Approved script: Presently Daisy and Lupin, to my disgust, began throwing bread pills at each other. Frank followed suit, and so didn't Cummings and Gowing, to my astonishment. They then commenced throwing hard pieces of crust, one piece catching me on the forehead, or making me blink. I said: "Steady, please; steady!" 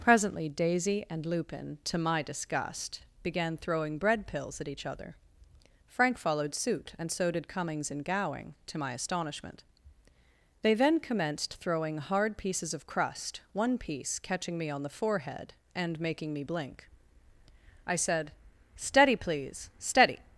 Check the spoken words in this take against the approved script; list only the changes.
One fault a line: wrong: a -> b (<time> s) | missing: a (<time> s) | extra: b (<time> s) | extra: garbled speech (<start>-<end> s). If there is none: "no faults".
wrong: didn't -> did (7.3 s)
wrong: or -> and (15.8 s)